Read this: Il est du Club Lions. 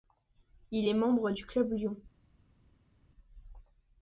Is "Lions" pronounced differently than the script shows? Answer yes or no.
no